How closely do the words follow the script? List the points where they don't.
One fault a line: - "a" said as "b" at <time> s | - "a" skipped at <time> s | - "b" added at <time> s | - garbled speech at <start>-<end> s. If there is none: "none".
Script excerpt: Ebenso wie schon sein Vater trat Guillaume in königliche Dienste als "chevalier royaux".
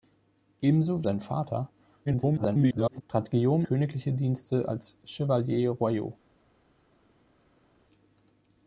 - "schon" skipped at 1.1 s
- garbled speech at 2.1-3.0 s
- "in" skipped at 3.6 s